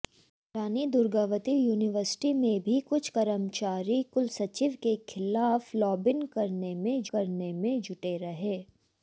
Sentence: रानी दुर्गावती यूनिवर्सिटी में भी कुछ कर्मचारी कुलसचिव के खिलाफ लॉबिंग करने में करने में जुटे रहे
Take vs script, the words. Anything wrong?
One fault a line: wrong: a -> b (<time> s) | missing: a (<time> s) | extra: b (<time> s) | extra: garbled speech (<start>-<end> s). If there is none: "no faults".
no faults